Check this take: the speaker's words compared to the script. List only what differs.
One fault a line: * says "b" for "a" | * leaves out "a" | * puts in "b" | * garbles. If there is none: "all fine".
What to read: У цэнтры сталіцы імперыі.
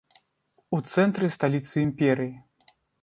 all fine